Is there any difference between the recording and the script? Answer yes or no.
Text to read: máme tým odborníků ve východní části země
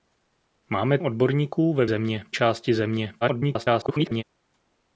yes